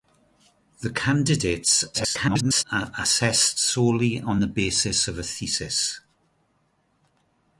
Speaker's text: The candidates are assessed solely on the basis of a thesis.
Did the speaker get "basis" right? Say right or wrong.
right